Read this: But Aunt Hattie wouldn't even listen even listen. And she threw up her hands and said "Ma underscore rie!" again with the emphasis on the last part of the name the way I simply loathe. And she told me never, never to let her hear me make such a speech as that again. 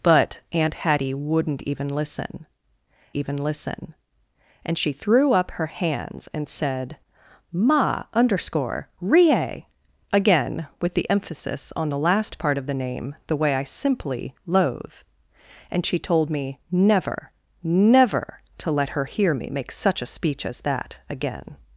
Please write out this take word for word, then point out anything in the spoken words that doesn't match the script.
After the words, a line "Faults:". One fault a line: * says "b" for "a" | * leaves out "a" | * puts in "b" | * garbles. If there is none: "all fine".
But Aunt Hattie wouldn't even listen even listen. And she threw up her hands and said "Ma underscore rie!" again with the emphasis on the last part of the name the way I simply loathe. And she told me never, never to let her hear me make such a speech as that again.
Faults:
all fine